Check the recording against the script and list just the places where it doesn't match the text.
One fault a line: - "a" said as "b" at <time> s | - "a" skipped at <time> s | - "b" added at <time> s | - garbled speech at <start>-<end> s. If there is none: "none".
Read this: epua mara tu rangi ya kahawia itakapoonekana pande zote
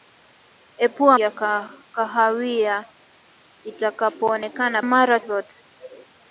- "mara tu rangi" skipped at 1.2 s
- "pande" said as "mara" at 4.8 s